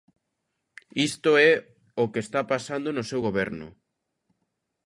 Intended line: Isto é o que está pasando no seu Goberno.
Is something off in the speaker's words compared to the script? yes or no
no